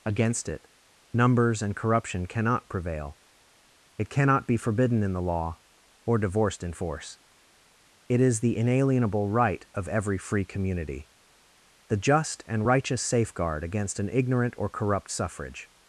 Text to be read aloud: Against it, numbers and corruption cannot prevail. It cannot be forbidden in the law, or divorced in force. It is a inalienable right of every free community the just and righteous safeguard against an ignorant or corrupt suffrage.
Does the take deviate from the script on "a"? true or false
true